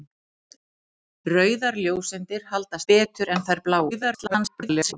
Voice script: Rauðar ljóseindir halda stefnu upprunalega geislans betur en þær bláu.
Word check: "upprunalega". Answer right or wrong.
wrong